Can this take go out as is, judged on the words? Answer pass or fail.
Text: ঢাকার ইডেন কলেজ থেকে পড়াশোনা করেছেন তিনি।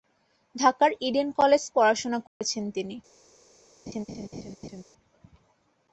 fail